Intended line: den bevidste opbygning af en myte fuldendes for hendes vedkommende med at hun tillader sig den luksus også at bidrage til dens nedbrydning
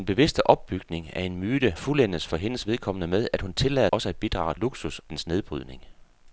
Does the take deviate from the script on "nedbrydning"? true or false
false